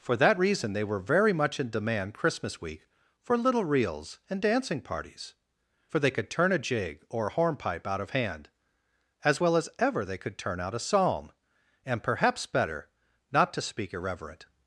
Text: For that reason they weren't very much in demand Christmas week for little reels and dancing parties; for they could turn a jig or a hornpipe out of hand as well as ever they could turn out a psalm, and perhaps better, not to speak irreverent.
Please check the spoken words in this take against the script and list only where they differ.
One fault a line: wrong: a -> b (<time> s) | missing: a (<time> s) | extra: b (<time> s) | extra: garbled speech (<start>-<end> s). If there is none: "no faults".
wrong: weren't -> were (0.9 s)